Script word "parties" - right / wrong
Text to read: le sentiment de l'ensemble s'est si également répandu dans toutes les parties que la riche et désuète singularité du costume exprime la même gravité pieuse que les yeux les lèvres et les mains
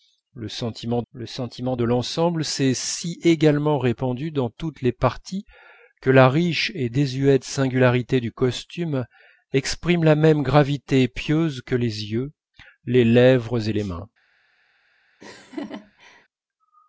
right